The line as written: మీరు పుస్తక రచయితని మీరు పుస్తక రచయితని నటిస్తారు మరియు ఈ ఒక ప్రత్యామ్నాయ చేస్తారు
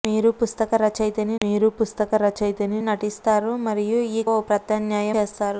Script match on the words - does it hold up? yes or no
yes